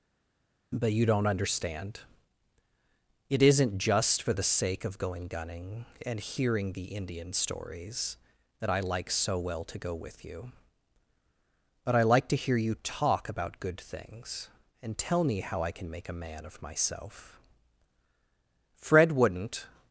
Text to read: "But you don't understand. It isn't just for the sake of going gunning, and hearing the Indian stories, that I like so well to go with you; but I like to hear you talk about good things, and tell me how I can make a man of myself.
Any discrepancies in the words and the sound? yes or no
yes